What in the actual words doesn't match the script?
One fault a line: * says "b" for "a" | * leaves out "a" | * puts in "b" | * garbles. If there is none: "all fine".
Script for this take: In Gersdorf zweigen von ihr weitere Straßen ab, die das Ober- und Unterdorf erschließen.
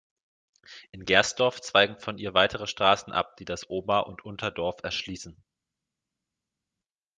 all fine